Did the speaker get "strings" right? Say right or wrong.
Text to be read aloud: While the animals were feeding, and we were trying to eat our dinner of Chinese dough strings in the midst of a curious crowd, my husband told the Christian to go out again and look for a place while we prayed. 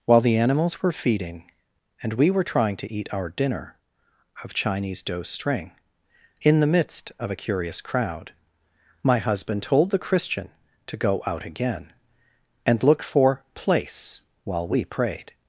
wrong